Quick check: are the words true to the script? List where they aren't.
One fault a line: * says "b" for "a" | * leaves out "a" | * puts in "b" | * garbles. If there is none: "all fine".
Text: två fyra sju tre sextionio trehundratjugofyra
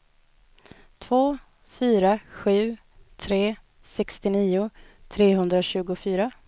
all fine